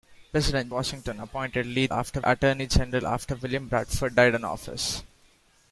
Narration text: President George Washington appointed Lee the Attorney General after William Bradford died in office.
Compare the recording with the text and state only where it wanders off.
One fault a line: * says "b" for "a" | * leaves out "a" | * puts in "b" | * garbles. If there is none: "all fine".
* leaves out "George"
* says "after" for "the"